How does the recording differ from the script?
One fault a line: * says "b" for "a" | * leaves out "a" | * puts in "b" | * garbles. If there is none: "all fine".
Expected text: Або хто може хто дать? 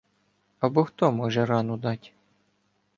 * says "рану" for "хто"